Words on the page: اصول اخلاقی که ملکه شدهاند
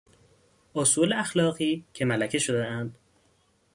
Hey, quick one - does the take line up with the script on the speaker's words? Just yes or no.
yes